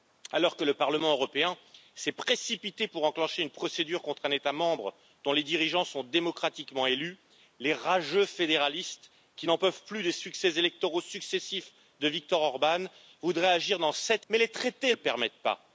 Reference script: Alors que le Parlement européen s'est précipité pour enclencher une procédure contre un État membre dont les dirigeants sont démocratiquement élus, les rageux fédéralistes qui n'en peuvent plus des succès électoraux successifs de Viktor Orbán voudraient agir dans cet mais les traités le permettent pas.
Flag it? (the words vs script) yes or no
no